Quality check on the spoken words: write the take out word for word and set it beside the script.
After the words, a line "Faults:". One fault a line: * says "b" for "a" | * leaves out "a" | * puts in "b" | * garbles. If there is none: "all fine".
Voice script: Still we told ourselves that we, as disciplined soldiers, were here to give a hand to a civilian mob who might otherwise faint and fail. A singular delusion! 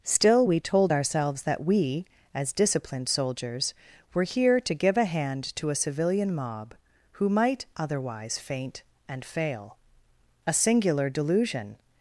Still we told ourselves that we, as disciplined soldiers, were here to give a hand to a civilian mob who might otherwise faint and fail. A singular delusion!
Faults:
all fine